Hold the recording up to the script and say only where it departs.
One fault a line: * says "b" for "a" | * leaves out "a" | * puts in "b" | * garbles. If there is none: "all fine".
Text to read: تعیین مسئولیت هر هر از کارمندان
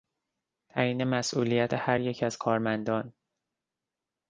* says "یک" for "هر"